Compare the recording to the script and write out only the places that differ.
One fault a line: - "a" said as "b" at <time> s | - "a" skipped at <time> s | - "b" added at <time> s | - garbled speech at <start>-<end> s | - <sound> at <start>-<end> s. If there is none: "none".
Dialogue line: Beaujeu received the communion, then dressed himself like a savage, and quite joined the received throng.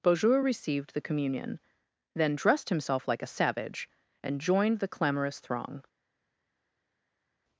- "quite" skipped at 4.4 s
- "received" said as "clamorous" at 4.9 s